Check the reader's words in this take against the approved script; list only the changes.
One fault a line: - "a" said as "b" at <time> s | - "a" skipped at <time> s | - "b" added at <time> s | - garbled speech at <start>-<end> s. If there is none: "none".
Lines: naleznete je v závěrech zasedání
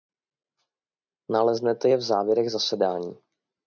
none